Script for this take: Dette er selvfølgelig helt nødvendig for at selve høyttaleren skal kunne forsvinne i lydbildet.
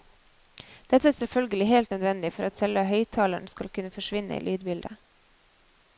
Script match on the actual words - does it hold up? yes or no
yes